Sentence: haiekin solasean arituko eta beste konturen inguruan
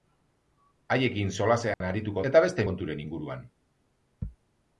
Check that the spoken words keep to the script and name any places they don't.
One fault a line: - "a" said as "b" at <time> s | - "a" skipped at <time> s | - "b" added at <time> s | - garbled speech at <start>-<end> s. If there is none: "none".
none